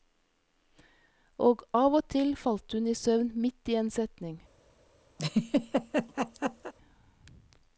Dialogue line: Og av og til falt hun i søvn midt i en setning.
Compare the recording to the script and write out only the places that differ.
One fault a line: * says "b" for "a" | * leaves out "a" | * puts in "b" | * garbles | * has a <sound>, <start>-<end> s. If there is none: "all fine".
* has a laugh, 5.2-6.7 s